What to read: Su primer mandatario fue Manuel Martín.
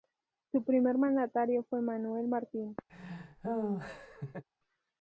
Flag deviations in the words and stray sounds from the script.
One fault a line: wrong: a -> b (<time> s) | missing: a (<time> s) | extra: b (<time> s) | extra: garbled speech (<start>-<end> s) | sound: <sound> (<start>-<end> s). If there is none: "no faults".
sound: laugh (2.9-4.4 s)